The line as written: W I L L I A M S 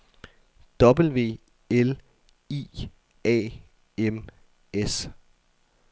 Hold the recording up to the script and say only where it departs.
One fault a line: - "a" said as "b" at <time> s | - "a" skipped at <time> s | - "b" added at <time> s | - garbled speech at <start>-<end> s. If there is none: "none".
- "I L" skipped at 1.4 s